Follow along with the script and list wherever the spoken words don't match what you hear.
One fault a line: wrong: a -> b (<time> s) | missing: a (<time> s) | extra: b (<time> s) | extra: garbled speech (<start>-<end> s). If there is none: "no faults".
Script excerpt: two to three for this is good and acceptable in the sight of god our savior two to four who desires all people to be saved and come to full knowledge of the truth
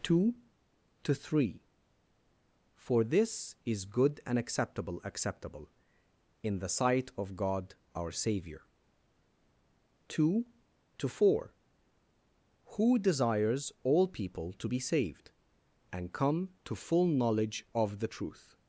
extra: acceptable (5.0 s)